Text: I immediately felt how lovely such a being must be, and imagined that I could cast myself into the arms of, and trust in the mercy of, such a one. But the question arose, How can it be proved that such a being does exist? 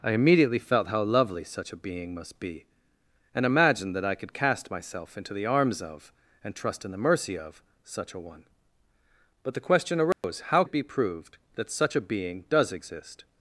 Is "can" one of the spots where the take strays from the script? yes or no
yes